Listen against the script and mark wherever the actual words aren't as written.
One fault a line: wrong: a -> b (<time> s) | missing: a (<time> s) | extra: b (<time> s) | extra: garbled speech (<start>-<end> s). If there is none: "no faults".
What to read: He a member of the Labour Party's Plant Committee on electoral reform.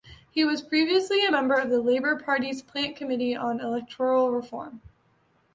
extra: was previously (0.4 s)